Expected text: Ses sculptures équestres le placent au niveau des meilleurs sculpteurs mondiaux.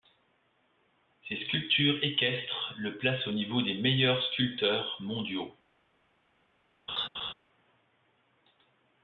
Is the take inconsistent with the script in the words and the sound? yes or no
yes